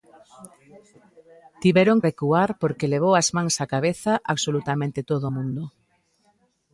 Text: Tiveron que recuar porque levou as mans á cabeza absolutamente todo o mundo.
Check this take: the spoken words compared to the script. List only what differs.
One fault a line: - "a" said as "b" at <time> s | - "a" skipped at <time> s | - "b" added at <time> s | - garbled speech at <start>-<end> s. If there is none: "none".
- "que" skipped at 2.0 s